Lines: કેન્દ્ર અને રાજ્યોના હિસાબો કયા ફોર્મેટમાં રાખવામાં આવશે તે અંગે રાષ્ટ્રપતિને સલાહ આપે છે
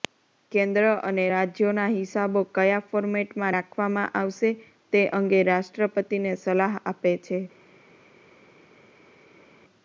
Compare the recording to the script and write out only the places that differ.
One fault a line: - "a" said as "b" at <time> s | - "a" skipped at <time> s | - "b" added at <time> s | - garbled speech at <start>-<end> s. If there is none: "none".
none